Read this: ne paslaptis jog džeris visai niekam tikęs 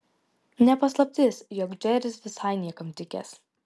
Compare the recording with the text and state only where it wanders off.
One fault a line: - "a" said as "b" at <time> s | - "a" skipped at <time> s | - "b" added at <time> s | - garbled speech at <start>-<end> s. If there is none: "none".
none